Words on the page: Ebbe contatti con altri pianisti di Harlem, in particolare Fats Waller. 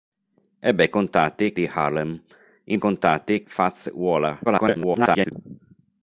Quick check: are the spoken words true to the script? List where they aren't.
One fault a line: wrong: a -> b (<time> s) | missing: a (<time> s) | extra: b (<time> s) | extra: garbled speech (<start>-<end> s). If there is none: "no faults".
missing: con altri pianisti (1.5 s)
wrong: particolare -> contatti (2.8 s)
extra: garbled speech (4.4-5.3 s)